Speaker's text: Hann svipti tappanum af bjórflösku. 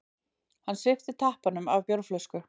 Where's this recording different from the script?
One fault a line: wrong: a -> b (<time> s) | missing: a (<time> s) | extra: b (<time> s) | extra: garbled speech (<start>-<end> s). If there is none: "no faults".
no faults